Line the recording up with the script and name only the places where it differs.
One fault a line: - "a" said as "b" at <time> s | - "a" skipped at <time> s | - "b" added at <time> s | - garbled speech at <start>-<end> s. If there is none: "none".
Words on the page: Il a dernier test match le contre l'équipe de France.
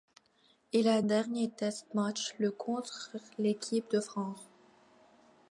none